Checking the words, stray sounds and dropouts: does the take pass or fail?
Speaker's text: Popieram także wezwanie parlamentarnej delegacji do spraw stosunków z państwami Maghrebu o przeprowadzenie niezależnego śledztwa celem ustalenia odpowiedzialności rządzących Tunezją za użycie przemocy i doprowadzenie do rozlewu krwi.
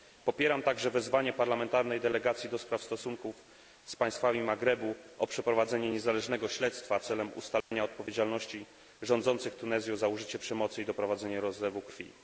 fail